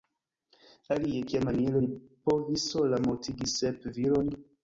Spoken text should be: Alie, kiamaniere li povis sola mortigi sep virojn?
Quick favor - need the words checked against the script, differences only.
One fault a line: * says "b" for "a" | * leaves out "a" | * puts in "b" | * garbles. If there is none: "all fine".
all fine